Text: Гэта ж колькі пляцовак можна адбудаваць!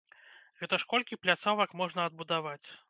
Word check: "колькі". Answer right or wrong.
right